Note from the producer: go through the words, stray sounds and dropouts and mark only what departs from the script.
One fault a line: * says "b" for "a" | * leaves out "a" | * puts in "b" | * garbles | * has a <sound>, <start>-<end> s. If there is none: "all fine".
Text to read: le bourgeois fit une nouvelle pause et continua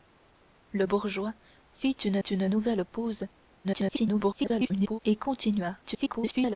* puts in "une"
* garbles
* garbles